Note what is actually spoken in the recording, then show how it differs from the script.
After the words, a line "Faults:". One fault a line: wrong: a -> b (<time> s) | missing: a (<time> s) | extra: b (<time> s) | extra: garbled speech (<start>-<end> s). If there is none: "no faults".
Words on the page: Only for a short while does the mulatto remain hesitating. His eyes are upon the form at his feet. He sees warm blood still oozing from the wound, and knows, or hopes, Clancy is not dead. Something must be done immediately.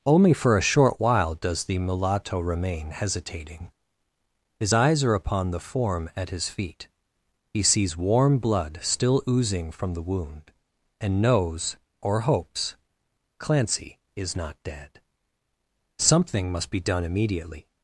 Only for a short while does the mulatto remain hesitating. His eyes are upon the form at his feet. He sees warm blood still oozing from the wound, and knows, or hopes, Clancy is not dead. Something must be done immediately.
Faults:
no faults